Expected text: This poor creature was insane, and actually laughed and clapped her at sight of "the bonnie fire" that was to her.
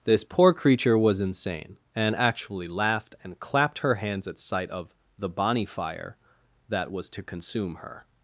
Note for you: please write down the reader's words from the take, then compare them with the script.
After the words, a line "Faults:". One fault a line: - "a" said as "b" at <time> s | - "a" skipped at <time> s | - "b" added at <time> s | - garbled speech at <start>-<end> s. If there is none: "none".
This poor creature was insane, and actually laughed and clapped her hands at sight of "the bonnie fire" that was to consume her.
Faults:
- "hands" added at 4.0 s
- "consume" added at 7.2 s